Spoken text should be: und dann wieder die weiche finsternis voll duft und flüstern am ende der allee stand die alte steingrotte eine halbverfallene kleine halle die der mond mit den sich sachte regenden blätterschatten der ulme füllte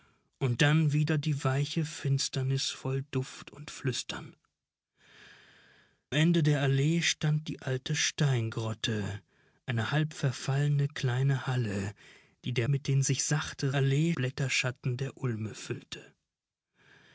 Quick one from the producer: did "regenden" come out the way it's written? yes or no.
no